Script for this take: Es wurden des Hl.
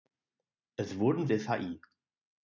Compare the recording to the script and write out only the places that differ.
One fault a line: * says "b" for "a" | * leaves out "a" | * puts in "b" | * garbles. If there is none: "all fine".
all fine